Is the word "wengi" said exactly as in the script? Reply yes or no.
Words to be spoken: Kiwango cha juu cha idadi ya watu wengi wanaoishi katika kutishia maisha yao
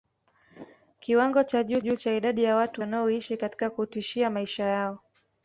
no